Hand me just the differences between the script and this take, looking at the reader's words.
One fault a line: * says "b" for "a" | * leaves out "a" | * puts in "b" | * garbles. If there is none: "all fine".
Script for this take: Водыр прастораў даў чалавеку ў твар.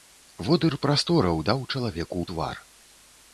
all fine